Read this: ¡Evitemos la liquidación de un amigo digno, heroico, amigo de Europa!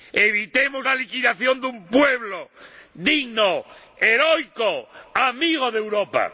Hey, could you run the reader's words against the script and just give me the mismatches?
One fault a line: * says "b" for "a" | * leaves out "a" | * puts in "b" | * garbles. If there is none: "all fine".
* says "pueblo" for "amigo"